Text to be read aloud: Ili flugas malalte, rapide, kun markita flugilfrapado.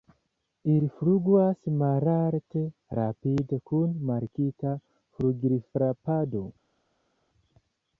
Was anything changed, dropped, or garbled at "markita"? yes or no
no